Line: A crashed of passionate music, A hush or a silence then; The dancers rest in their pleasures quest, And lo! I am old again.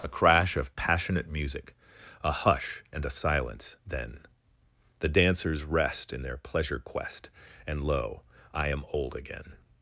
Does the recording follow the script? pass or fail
fail